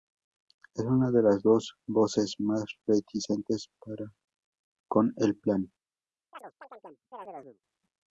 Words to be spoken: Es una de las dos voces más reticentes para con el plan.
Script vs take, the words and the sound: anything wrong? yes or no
yes